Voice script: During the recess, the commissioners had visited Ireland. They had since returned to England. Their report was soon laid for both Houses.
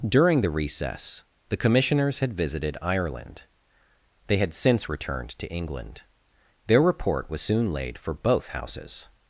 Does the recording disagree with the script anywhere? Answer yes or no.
no